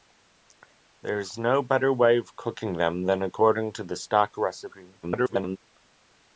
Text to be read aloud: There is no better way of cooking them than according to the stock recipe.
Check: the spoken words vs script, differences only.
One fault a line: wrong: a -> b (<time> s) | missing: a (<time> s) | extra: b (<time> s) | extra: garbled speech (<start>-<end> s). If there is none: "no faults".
extra: garbled speech (5.0-5.6 s)